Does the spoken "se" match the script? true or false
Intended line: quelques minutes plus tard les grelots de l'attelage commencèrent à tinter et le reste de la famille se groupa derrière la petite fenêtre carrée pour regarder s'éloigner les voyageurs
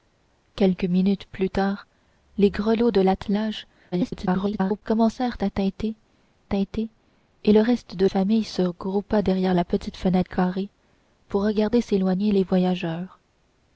true